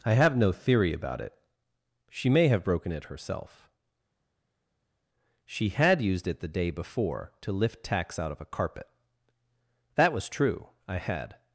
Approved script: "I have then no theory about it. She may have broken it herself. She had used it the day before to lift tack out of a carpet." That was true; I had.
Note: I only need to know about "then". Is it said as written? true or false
false